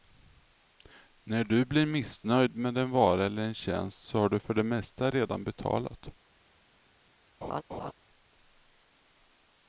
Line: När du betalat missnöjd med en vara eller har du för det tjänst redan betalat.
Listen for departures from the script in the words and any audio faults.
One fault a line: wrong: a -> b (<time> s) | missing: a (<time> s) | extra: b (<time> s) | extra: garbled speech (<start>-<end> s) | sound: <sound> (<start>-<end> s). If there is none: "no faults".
wrong: betalat -> blir (1.6 s)
extra: en tjänst så (3.4 s)
wrong: tjänst -> mesta (4.6 s)
sound: laugh (7.4-7.9 s)